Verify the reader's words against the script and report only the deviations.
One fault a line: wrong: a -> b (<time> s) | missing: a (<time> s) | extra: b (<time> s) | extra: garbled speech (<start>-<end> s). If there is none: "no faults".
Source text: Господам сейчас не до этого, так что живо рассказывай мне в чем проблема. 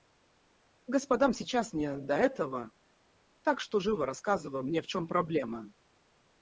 no faults